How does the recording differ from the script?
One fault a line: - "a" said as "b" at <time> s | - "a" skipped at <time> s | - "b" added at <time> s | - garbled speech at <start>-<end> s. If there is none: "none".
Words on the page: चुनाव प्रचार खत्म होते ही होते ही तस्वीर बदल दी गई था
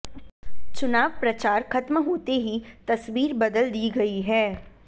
- "होते ही" skipped at 2.6 s
- "था" said as "है" at 4.2 s